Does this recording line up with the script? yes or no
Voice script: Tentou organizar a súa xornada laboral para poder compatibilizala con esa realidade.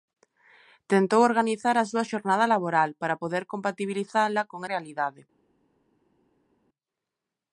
no